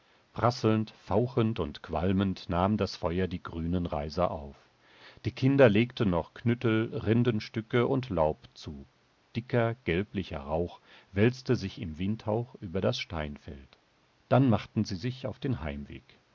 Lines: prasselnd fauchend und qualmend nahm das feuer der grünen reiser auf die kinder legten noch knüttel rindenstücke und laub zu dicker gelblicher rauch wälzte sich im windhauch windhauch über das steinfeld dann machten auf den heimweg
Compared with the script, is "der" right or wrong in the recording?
wrong